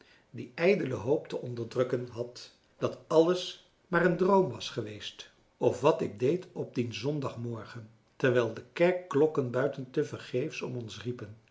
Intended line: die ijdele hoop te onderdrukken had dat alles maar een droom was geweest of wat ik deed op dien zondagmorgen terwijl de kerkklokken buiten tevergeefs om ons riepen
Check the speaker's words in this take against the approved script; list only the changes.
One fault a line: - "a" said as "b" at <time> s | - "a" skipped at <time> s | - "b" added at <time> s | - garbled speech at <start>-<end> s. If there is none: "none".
none